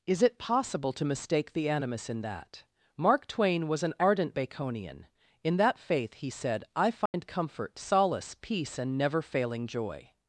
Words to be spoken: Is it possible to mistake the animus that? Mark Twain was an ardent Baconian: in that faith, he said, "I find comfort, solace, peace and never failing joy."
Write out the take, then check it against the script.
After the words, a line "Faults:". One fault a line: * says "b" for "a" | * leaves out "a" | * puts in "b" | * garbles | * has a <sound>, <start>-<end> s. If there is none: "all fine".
Is it possible to mistake the animus in that? Mark Twain was an ardent Baconian: in that faith, he said, "I find comfort, solace, peace and never failing joy."
Faults:
* puts in "in"
* has a dropout, 7.1-7.1 s